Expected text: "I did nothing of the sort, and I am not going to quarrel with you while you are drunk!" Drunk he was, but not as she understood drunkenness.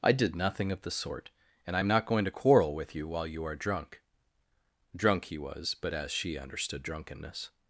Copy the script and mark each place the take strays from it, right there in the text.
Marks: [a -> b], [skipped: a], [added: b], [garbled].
"I did nothing of the sort, and I am not going to quarrel with you while you are drunk!" Drunk he was, but [skipped: not] as she understood drunkenness.